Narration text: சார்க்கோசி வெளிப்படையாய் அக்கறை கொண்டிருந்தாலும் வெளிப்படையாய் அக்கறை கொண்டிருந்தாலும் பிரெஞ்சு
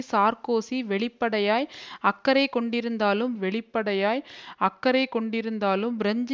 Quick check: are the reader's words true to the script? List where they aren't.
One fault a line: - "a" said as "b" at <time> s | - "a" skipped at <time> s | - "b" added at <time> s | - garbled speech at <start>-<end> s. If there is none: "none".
none